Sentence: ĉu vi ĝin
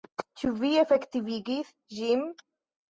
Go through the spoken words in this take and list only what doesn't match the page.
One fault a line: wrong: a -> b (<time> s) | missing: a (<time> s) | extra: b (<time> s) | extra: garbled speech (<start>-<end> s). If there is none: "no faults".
extra: efektivigis (0.8 s)